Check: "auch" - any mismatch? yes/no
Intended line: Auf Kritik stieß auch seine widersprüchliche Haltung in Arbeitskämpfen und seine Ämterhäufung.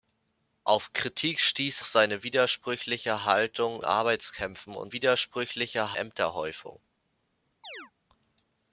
yes